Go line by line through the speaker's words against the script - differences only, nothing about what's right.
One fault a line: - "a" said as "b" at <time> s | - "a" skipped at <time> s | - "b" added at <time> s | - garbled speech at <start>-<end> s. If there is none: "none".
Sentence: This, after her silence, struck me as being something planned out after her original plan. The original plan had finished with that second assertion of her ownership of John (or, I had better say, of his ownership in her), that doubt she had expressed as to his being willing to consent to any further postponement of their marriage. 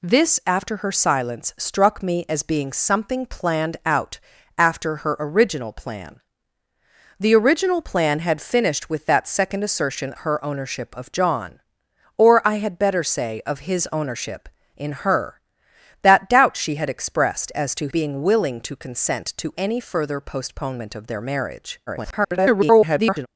- "of" skipped at 10.1 s
- "his" skipped at 17.9 s
- garbled speech at 21.9-23.3 s